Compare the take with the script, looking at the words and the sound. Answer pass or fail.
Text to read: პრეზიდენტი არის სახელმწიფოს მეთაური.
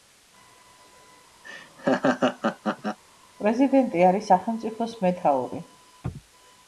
fail